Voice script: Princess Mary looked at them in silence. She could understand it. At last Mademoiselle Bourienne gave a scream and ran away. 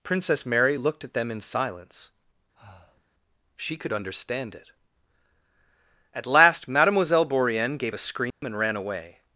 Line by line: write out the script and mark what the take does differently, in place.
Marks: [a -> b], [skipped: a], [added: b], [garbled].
Princess Mary looked at them in silence. She could understand it. At last Mademoiselle Bourienne gave a scream and ran away.